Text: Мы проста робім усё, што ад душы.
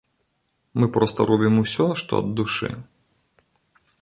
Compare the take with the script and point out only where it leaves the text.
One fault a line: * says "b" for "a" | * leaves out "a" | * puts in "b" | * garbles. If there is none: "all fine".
all fine